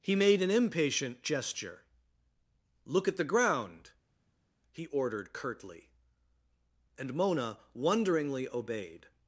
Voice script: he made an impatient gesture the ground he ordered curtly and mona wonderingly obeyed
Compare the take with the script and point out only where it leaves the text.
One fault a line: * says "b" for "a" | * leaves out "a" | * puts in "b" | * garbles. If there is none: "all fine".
* puts in "look at"